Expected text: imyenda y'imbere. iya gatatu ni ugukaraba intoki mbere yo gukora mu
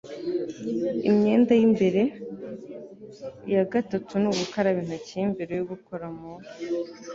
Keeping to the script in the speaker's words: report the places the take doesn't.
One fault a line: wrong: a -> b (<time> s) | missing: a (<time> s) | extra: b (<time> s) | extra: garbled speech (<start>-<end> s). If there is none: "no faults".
no faults